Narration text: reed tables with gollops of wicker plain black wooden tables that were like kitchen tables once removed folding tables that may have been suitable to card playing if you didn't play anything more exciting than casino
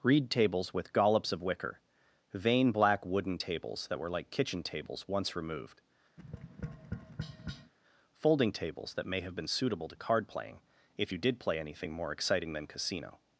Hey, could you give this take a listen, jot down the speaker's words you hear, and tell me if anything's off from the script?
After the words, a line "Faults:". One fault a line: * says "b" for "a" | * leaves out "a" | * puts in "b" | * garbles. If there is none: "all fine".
reed tables with gollops of wicker vain black wooden tables that were like kitchen tables once removed folding tables that may have been suitable to card playing if you did play anything more exciting than casino
Faults:
* says "vain" for "plain"
* says "did" for "didn't"